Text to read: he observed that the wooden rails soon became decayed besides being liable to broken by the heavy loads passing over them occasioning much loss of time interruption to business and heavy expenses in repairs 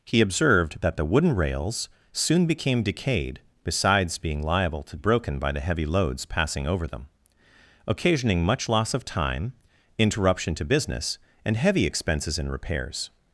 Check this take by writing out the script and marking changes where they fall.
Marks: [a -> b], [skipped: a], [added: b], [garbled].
he observed that the wooden rails soon became decayed besides being liable to broken by the heavy loads passing over them occasioning much loss of time interruption to business and heavy expenses in repairs